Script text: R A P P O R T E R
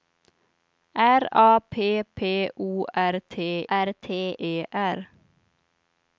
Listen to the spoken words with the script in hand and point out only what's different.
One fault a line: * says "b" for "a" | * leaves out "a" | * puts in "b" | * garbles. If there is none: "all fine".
* puts in "R T"